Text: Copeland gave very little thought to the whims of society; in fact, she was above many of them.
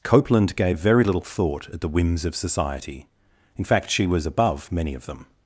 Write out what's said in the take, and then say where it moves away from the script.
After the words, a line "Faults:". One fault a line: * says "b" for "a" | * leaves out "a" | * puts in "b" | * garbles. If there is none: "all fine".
Copeland gave very little thought at the whims of society; in fact, she was above many of them.
Faults:
* says "at" for "to"